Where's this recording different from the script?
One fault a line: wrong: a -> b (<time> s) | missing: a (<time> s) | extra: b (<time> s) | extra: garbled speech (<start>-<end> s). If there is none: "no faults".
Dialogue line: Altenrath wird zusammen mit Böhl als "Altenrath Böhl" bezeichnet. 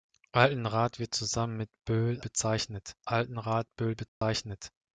wrong: als -> bezeichnet (2.2 s)